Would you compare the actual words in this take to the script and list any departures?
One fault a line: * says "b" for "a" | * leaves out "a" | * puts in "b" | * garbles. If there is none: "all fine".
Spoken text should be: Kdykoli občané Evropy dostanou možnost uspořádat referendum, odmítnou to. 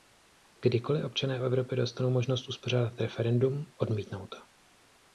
all fine